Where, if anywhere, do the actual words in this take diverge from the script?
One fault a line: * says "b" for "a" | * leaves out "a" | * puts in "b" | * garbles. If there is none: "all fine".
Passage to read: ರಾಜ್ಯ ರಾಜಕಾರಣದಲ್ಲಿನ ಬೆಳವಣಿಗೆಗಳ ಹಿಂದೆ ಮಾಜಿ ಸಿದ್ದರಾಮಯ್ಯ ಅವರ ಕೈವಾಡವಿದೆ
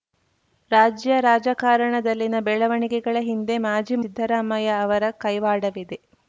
all fine